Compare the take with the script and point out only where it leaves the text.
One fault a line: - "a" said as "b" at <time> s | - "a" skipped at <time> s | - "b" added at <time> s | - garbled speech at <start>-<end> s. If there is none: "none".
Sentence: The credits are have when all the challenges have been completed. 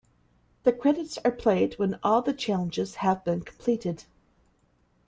- "have" said as "played" at 1.3 s